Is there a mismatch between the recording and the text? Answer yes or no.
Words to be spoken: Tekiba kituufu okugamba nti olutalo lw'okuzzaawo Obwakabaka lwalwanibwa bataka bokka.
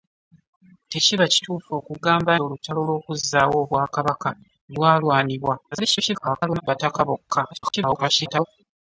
yes